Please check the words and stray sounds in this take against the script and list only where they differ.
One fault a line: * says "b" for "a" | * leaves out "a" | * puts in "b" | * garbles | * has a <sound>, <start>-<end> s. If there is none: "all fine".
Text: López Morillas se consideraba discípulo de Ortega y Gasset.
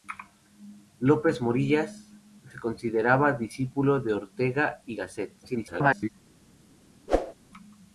* garbles
* has a whoosh, 7.1-7.3 s